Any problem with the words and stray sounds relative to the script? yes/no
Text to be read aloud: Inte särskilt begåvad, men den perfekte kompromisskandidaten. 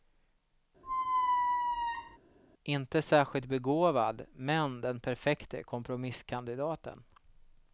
yes